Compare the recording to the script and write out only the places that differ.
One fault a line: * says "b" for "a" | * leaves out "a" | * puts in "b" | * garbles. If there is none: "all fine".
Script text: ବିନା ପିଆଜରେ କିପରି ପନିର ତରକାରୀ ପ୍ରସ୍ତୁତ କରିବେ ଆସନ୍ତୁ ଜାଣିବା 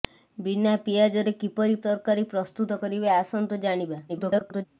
* leaves out "ପନିର"
* garbles